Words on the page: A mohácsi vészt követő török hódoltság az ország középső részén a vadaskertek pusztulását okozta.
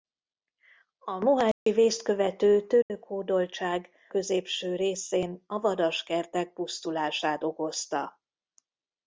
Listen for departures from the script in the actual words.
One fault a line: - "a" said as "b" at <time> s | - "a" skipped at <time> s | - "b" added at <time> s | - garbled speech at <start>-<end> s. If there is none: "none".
- "az ország" skipped at 3.9 s